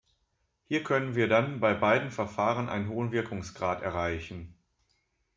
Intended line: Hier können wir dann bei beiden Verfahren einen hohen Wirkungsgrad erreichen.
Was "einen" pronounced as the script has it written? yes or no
yes